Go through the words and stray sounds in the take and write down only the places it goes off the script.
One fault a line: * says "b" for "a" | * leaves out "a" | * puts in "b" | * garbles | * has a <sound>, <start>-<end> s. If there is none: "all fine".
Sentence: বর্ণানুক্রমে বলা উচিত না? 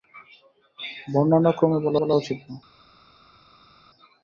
* puts in "বলা"